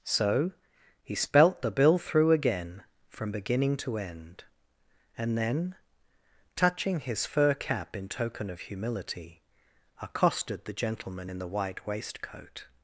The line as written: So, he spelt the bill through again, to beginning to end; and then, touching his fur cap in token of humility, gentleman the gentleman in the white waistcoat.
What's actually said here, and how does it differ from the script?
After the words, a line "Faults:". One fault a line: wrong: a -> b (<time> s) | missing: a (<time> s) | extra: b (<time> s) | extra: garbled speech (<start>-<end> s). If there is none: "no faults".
So, he spelt the bill through again, from beginning to end; and then, touching his fur cap in token of humility, accosted the gentleman in the white waistcoat.
Faults:
wrong: to -> from (3.1 s)
wrong: gentleman -> accosted (10.0 s)